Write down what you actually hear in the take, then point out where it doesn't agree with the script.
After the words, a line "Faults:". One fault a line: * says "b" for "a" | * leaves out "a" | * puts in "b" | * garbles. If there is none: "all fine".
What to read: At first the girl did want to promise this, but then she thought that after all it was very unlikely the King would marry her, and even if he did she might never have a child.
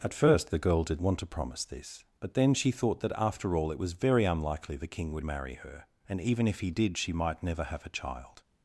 At first the girl did want to promise this, but then she thought that after all it was very unlikely the King would marry her, and even if he did she might never have a child.
Faults:
all fine